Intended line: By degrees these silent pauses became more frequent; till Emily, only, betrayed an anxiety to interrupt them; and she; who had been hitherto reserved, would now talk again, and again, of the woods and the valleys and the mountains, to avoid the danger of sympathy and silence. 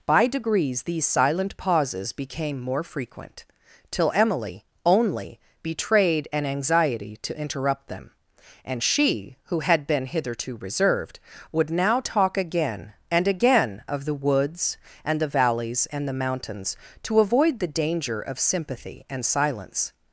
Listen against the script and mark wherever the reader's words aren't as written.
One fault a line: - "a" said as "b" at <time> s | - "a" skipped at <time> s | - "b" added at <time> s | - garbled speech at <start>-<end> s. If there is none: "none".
none